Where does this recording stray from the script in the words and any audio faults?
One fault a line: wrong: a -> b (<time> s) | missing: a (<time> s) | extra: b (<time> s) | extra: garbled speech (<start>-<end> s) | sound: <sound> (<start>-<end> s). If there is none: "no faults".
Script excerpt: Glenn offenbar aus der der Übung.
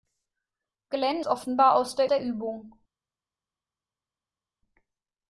no faults